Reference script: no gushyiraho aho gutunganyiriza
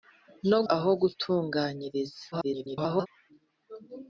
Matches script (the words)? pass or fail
fail